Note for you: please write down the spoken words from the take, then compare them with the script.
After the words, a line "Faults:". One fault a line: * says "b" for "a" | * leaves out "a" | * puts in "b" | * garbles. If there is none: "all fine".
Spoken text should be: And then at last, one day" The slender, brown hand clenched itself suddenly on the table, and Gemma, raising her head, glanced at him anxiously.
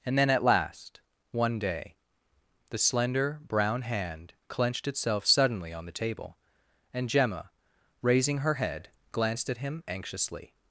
And then at last, one day" The slender, brown hand clenched itself suddenly on the table, and Gemma, raising her head, glanced at him anxiously.
Faults:
all fine